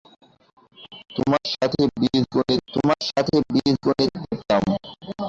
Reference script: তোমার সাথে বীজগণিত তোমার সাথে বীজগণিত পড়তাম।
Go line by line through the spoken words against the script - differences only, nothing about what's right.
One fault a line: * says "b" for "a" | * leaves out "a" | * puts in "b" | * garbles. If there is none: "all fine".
all fine